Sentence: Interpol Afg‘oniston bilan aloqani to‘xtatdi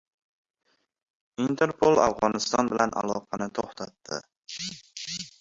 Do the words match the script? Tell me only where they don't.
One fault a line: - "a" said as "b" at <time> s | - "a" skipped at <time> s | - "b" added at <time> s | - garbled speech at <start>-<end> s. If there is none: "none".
none